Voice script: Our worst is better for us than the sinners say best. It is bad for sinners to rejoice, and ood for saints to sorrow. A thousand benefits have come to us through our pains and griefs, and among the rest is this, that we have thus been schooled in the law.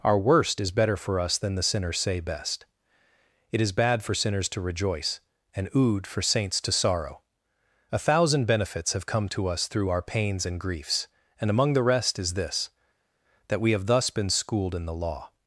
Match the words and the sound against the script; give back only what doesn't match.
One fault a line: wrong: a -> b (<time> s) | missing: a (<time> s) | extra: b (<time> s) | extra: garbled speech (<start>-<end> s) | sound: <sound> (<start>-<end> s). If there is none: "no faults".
no faults